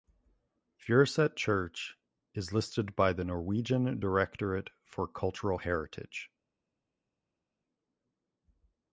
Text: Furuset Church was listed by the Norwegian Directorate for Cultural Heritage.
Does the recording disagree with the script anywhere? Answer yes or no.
yes